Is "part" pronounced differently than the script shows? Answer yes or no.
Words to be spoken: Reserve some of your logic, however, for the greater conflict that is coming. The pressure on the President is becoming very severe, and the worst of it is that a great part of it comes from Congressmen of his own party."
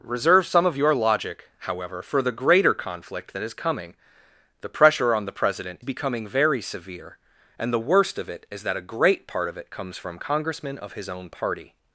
no